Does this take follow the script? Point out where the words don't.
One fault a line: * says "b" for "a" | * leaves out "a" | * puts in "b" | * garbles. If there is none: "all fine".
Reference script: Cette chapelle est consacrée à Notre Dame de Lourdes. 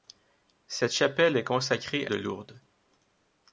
* leaves out "à Notre Dame"